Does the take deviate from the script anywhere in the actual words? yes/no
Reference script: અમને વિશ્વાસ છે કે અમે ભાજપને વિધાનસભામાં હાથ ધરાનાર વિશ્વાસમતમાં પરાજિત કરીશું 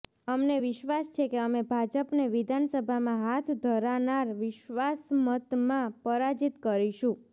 no